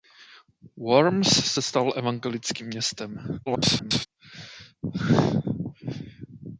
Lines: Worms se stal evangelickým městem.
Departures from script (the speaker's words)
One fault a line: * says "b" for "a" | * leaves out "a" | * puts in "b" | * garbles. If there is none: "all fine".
* garbles